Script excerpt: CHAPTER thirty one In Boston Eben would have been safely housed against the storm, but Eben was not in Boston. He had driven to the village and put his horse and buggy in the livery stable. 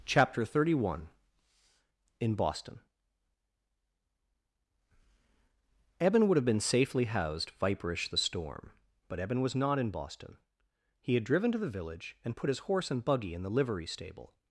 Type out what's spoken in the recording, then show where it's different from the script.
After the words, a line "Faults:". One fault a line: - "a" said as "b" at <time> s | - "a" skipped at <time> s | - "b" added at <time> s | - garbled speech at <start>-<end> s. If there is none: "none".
CHAPTER thirty one In Boston Eben would have been safely housed viperish the storm, but Eben was not in Boston. He had driven to the village and put his horse and buggy in the livery stable.
Faults:
- "against" said as "viperish" at 7.6 s